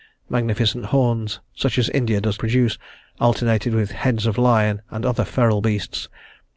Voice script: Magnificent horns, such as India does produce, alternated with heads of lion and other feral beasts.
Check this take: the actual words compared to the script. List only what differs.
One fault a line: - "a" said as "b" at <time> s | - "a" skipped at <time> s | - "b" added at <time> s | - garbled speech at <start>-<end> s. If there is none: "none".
none